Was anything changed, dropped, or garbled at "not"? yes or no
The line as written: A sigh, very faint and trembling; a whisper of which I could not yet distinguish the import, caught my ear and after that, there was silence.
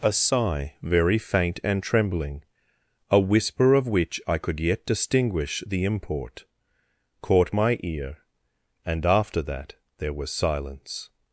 yes